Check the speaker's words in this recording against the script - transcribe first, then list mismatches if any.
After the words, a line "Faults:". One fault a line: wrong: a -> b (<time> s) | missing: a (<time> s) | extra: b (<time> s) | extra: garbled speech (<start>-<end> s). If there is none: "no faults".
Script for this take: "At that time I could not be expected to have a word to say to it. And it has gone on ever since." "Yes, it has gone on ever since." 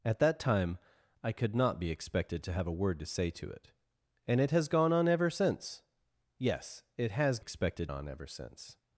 "At that time I could not be expected to have a word to say to it. And it has gone on ever since." "Yes, it has expected on ever since."
Faults:
wrong: gone -> expected (7.4 s)